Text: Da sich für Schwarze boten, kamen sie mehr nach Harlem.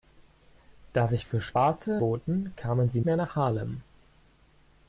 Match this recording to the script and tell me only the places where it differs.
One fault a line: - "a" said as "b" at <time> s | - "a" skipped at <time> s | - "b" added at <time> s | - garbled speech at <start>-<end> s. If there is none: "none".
none